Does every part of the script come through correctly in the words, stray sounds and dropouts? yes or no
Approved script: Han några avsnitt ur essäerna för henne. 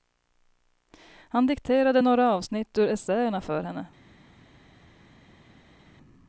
no